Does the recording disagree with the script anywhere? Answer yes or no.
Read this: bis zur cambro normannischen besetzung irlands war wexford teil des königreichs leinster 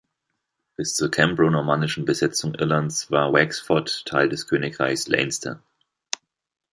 no